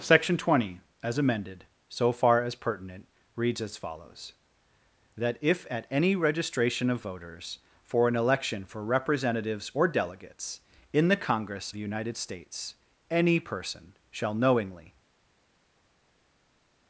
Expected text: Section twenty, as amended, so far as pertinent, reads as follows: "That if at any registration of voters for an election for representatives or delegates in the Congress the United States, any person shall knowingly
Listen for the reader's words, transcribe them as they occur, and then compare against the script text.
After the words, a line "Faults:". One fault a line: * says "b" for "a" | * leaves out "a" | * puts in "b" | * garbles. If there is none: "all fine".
Section twenty, as amended, so far as pertinent, reads as follows: "That if at any registration of voters for an election for representatives or delegates in the Congress the United States, any person shall knowingly
Faults:
all fine